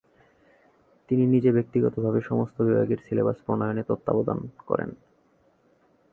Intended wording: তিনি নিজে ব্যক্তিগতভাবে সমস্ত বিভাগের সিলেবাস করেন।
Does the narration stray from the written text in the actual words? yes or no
yes